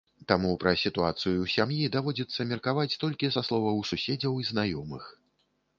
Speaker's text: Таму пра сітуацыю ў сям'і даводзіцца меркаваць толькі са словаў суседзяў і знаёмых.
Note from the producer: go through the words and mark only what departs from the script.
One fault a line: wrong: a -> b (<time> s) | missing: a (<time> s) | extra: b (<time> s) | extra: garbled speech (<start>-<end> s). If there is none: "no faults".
no faults